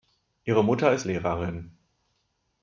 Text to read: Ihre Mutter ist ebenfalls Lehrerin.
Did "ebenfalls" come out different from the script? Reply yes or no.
yes